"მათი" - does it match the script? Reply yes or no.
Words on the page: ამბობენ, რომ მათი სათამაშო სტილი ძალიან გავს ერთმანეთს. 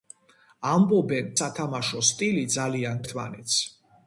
no